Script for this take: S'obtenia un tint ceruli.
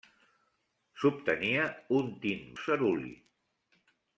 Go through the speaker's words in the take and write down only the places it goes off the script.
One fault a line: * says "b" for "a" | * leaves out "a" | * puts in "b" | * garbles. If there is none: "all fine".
all fine